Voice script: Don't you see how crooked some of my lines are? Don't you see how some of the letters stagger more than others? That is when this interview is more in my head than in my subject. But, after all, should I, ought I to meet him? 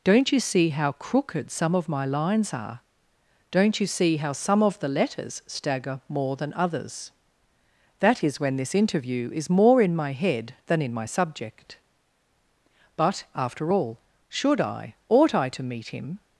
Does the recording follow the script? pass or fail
pass